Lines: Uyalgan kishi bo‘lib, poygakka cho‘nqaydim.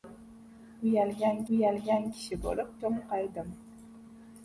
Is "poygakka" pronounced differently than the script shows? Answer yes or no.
yes